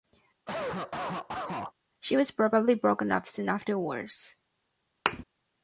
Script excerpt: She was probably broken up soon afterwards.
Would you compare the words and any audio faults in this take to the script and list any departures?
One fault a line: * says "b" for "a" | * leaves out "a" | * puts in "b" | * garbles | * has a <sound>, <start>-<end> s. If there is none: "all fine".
* has a cough, 0.5-1.7 s
* has a thud, 5.1-5.2 s